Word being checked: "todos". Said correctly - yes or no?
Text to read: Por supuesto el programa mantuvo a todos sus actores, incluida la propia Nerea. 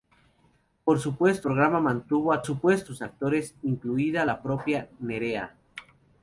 no